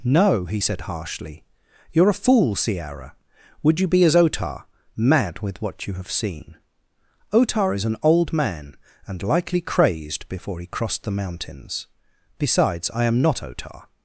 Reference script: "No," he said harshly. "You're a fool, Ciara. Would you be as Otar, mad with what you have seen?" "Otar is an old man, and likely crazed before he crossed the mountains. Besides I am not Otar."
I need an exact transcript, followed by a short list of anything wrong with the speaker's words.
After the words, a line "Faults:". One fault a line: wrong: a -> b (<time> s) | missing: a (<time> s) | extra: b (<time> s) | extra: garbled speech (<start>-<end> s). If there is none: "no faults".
"No," he said harshly. "You're a fool, Ciara. Would you be as Otar, mad with what you have seen?" "Otar is an old man, and likely crazed before he crossed the mountains. Besides I am not Otar."
Faults:
no faults